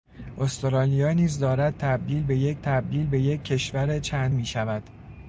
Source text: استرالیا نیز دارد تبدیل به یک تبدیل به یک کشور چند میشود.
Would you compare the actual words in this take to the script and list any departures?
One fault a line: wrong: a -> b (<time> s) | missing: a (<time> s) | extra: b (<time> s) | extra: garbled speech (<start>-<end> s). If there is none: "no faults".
no faults